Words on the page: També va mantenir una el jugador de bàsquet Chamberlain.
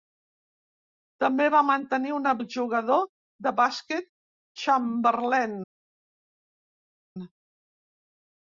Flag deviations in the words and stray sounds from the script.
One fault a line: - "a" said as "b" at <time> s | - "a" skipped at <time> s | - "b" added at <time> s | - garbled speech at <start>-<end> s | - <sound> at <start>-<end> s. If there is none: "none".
none